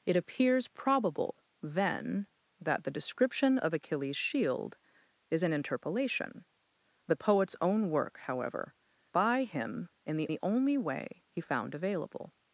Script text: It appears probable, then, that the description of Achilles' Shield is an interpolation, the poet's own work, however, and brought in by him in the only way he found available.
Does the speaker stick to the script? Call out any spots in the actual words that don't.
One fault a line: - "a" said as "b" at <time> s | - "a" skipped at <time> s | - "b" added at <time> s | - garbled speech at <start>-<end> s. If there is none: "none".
- "and brought in" skipped at 8.7 s
- "the" added at 10.3 s